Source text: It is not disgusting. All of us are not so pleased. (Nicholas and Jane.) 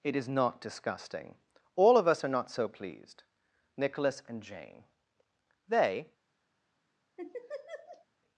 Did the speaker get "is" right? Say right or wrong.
right